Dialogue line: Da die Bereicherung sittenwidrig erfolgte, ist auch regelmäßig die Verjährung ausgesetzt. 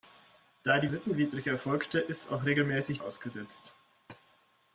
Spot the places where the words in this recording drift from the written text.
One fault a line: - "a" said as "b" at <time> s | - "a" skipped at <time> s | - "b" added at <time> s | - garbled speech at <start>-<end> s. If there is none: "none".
- "Bereicherung" skipped at 0.9 s
- "die Verjährung" skipped at 3.0 s